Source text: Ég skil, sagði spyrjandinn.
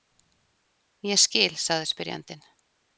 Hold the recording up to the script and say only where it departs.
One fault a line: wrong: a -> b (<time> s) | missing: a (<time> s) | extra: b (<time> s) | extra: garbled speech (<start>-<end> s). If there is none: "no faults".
no faults